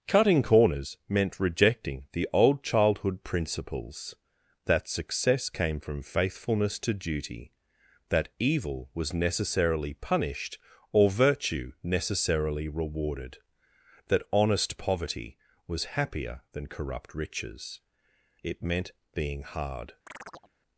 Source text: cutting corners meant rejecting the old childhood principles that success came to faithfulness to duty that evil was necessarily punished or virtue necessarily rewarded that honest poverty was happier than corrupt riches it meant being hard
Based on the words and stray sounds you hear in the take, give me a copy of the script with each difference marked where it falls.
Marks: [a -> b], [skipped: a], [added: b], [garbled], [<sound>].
cutting corners meant rejecting the old childhood principles that success came [to -> from] faithfulness to duty that evil was necessarily punished or virtue necessarily rewarded that honest poverty was happier than corrupt riches it meant being hard [chirp]